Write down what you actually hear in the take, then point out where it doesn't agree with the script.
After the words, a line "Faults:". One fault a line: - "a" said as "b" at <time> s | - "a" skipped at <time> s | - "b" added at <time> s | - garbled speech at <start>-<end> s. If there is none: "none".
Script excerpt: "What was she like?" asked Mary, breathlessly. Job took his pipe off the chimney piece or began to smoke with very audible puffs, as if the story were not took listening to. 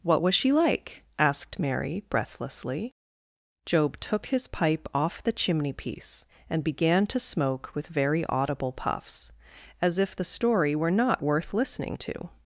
"What was she like?" asked Mary, breathlessly. Job took his pipe off the chimney piece and began to smoke with very audible puffs, as if the story were not worth listening to.
Faults:
- "or" said as "and" at 6.5 s
- "took" said as "worth" at 11.2 s